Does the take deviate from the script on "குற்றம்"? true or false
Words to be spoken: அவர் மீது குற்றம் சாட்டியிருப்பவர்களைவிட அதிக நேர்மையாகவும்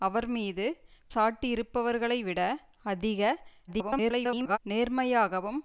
true